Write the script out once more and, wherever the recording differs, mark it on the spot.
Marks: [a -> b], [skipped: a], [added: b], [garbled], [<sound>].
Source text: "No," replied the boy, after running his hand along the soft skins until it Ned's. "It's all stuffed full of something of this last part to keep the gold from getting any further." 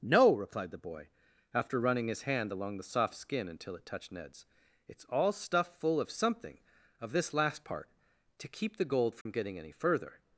"No," replied the boy, after running his hand along the soft [skins -> skin] until it [added: touched] Ned's. "It's all stuffed full of something of this last part to keep the gold from [dropout] getting any further."